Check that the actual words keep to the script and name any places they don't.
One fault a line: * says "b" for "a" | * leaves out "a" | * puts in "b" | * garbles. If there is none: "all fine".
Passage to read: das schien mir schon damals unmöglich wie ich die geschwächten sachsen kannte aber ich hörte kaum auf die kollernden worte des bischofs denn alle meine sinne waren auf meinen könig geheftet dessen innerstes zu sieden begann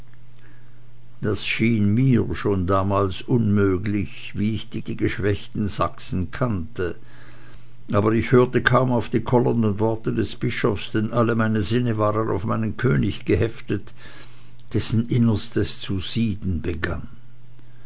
* puts in "die"